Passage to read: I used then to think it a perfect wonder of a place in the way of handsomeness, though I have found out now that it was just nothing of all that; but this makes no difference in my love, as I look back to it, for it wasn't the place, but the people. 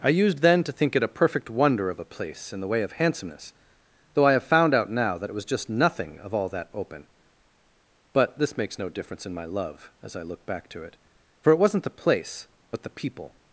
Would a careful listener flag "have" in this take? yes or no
no